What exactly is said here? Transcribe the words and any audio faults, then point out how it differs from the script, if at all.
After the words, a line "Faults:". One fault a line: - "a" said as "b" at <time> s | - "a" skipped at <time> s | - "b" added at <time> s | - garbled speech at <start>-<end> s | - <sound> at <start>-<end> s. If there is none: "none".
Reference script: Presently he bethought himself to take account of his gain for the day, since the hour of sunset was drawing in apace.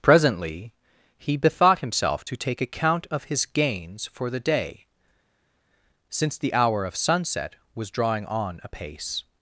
Presently he bethought himself to take account of his gains for the day, since the hour of sunset was drawing on apace.
Faults:
- "gain" said as "gains" at 3.4 s
- "in" said as "on" at 8.2 s